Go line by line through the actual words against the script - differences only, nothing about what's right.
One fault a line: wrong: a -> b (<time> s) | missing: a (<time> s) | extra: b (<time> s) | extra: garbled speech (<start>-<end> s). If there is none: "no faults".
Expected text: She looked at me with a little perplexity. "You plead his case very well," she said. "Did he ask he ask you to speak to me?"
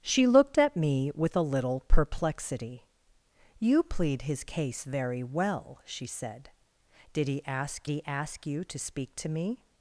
no faults